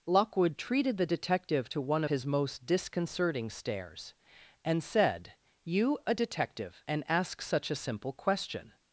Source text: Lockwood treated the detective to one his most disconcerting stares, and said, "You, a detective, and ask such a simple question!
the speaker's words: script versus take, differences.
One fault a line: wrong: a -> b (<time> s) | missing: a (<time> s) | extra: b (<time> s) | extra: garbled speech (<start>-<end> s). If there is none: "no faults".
no faults